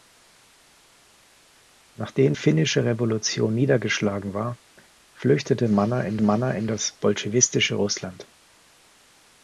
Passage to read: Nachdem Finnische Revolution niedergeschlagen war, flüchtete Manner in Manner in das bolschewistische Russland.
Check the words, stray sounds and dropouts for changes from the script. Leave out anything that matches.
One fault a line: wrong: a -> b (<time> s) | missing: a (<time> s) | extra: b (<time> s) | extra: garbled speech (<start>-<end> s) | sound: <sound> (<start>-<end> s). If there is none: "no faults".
no faults